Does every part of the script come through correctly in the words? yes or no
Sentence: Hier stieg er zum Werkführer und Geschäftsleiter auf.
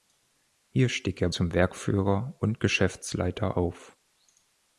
yes